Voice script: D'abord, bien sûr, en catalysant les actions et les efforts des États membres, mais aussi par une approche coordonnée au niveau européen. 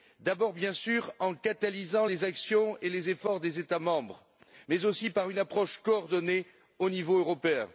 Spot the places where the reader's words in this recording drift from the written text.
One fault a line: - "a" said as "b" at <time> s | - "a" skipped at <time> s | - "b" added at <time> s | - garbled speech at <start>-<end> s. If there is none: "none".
none